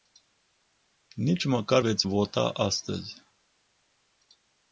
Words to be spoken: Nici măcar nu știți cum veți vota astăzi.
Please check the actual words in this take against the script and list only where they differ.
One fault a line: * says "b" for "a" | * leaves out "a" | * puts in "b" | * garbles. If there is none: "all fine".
* leaves out "nu știți cum"